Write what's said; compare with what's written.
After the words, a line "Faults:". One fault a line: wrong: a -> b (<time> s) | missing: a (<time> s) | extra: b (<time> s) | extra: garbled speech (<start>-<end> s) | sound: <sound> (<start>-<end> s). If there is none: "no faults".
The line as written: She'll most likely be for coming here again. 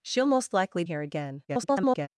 She'll most likely here again. [garbled]
Faults:
missing: be for coming (0.8 s)
extra: garbled speech (1.5-2.1 s)